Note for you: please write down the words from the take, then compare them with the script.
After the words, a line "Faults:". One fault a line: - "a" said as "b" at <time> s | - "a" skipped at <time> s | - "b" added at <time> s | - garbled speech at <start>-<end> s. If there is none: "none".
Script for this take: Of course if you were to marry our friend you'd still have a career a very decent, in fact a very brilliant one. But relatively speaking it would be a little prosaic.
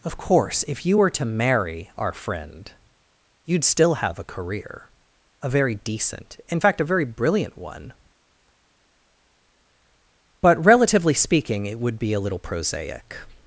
Of course if you were to marry our friend you'd still have a career a very decent, in fact a very brilliant one. But relatively speaking it would be a little prosaic.
Faults:
none